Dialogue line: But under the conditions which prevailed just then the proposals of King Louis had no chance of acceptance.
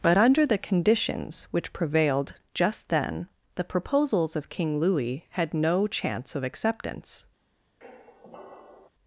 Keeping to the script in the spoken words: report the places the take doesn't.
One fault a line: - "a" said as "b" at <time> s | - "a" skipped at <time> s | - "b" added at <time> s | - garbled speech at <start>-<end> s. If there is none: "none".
none